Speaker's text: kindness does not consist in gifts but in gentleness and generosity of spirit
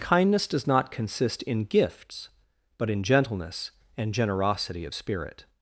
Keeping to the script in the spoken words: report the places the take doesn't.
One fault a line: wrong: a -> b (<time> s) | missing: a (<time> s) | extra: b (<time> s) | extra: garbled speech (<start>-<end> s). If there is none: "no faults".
no faults